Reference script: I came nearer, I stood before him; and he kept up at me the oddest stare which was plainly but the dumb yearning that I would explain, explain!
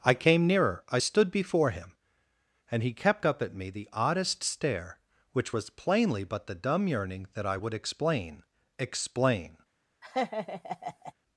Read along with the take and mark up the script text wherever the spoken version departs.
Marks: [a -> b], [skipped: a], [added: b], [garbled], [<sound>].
I came nearer, I stood before him; and he kept up at me the oddest stare which was plainly but the dumb yearning that I would explain, explain! [laugh]